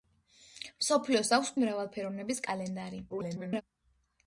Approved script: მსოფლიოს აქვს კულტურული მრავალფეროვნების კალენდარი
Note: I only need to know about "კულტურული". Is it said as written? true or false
false